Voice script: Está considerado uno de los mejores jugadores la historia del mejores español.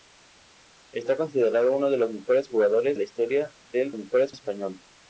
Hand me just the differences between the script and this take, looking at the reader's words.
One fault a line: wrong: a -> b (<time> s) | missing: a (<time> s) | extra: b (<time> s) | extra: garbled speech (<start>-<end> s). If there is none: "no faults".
no faults